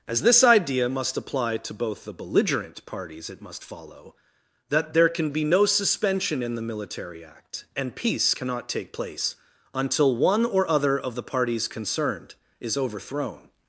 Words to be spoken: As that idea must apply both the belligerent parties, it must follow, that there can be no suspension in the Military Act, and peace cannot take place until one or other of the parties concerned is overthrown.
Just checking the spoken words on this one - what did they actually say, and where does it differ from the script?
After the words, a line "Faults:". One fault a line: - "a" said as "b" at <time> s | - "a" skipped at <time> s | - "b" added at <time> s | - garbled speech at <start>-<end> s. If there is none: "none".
As this idea must apply to both the belligerent parties, it must follow, that there can be no suspension in the Military Act, and peace cannot take place until one or other of the parties concerned is overthrown.
Faults:
- "that" said as "this" at 0.2 s
- "to" added at 1.6 s